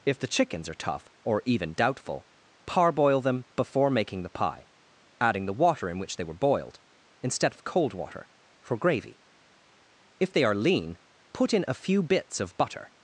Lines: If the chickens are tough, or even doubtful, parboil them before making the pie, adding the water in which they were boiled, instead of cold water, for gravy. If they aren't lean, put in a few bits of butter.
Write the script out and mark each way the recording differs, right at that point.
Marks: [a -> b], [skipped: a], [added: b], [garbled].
If the chickens are tough, or even doubtful, parboil them before making the pie, adding the water in which they were boiled, instead of cold water, for gravy. If they [aren't -> are] lean, put in a few bits of butter.